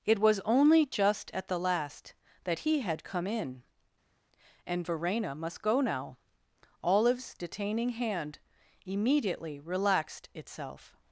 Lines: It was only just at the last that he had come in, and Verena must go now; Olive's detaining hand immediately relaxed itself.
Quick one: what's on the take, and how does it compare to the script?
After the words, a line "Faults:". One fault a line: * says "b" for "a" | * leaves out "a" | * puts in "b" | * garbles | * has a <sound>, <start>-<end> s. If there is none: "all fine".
It was only just at the last that he had come in, and Verena must go now; Olive's detaining hand immediately relaxed itself.
Faults:
all fine